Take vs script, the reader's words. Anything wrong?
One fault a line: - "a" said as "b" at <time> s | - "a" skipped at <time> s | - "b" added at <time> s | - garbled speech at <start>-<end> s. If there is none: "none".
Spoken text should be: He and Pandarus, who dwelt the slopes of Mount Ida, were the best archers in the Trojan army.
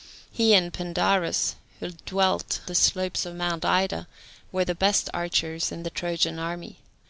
none